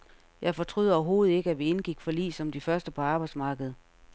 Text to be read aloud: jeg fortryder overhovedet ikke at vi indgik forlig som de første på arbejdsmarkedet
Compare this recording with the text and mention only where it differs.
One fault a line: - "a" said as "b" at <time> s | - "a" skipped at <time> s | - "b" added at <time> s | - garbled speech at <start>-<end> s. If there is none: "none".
none